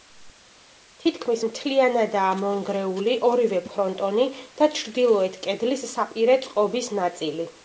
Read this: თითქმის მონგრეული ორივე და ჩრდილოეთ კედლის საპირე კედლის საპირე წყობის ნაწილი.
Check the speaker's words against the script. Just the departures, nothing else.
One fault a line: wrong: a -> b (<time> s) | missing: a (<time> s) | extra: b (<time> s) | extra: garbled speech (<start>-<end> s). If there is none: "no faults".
extra: მთლიანადაა (1.5 s)
extra: ფრონტონი (3.7 s)
missing: კედლის საპირე (6.4 s)